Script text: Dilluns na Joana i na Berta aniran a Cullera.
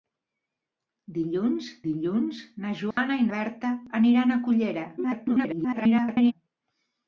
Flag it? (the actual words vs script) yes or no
yes